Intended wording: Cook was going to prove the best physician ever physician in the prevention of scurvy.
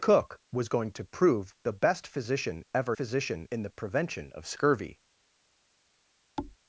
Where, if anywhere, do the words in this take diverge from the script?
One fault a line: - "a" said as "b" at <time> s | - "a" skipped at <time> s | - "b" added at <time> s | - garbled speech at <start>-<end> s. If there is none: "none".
none